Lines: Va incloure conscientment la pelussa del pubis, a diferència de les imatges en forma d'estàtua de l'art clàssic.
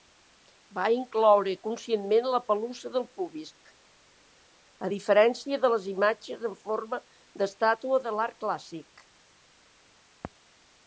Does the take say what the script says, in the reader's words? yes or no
yes